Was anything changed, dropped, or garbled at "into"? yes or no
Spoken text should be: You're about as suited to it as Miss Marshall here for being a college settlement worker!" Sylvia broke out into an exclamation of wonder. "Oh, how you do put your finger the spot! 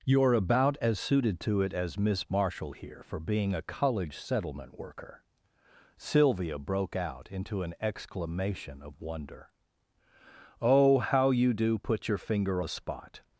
no